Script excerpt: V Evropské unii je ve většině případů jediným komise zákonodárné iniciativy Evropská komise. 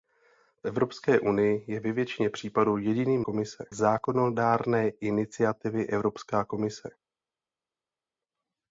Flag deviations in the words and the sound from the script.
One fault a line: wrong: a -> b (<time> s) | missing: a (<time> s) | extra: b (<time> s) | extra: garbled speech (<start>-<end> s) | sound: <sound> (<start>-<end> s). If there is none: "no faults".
no faults